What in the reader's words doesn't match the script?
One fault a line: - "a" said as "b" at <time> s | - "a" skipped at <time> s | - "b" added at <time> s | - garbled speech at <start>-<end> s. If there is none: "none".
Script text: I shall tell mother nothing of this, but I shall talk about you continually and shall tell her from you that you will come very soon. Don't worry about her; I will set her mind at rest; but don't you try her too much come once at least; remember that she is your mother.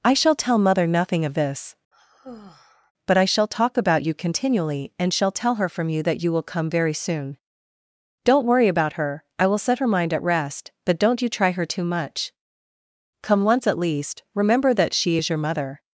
none